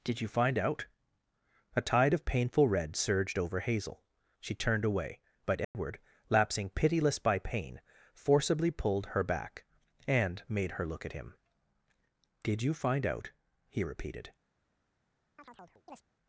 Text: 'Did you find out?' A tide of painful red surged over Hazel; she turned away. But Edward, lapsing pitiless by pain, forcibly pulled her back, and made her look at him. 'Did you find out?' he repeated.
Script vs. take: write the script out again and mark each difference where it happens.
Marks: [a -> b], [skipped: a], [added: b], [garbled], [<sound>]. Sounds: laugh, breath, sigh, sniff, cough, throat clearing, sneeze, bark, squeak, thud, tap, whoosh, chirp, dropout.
'Did you find out?' A tide of painful red surged over Hazel; she turned away. But Edward, [dropout] lapsing pitiless by pain, forcibly pulled her back, and made her look at him. 'Did you find out?' he repeated. [chirp]